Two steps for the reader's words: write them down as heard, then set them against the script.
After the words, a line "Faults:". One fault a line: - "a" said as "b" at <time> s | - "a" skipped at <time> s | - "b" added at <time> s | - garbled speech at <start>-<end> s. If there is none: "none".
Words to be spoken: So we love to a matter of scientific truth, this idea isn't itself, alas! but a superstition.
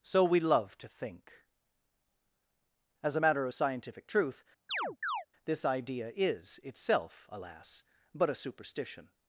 So we love to think. As a matter of scientific truth, this idea is itself, alas! but a superstition.
Faults:
- "think As" added at 0.9 s
- "isn't" said as "is" at 6.1 s